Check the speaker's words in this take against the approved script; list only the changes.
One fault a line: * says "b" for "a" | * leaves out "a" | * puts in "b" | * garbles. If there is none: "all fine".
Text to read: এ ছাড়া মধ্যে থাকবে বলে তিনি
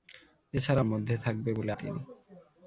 all fine